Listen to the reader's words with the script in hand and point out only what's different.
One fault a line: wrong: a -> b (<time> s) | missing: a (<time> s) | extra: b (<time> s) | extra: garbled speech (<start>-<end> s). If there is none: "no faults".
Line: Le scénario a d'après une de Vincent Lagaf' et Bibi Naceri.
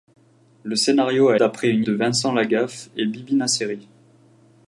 no faults